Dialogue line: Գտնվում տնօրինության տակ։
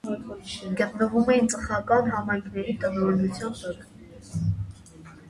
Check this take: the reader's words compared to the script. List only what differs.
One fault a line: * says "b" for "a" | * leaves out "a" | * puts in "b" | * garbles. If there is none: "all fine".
* puts in "էին ծխական համայնքների"